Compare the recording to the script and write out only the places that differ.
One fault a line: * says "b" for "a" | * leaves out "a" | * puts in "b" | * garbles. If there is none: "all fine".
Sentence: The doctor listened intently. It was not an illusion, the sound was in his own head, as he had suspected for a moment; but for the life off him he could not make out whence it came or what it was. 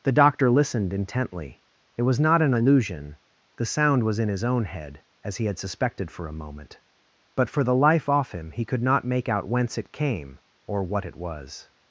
all fine